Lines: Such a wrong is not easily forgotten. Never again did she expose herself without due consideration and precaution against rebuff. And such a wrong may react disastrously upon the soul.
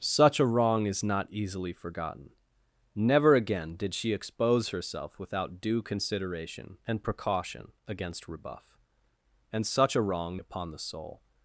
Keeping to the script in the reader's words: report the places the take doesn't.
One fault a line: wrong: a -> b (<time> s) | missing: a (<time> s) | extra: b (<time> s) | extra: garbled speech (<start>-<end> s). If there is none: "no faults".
missing: may react disastrously (10.4 s)